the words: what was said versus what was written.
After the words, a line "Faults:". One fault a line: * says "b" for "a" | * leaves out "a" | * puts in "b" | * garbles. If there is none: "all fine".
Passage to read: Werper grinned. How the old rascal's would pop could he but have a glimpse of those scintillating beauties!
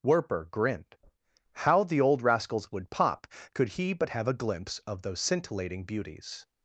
Werper grinned. How the old rascal's would pop could he but have a glimpse of those scintillating beauties!
Faults:
all fine